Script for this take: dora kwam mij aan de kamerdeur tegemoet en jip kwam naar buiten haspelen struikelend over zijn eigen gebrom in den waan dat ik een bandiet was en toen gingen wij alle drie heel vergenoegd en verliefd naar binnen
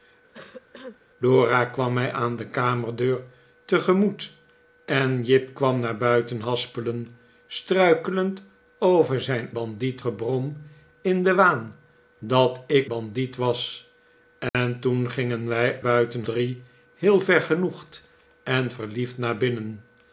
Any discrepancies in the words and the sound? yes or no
yes